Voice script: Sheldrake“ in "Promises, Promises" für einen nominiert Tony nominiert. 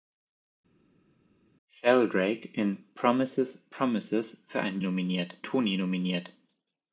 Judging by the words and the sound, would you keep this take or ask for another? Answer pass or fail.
pass